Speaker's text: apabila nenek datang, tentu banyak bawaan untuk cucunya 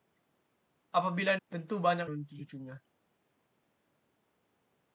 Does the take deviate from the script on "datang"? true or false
true